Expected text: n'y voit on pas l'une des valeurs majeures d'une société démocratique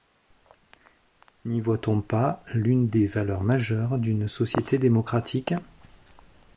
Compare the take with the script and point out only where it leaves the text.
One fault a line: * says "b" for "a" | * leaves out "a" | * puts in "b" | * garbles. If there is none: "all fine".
all fine